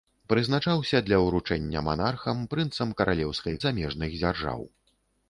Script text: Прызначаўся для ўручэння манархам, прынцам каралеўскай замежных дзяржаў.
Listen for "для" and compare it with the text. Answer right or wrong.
right